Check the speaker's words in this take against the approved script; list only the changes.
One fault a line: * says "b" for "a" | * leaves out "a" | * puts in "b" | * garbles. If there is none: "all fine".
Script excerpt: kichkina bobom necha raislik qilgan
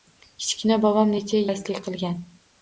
all fine